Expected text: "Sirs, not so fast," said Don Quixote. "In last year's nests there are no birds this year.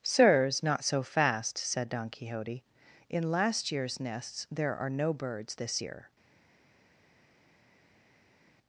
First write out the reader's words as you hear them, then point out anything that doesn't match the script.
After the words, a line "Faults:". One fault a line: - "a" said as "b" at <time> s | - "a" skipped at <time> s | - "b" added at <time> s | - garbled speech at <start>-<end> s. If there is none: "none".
"Sirs, not so fast," said Don Quixote. "In last year's nests there are no birds this year.
Faults:
none